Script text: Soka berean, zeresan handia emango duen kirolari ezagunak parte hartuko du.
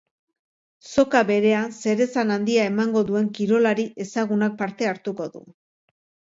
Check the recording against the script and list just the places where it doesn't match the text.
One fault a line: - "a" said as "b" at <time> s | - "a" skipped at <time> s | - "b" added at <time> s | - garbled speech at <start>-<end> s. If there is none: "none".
none